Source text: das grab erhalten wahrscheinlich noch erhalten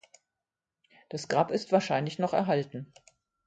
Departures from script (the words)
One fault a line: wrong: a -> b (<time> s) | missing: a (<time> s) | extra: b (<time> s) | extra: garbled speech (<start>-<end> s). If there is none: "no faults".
wrong: erhalten -> ist (1.5 s)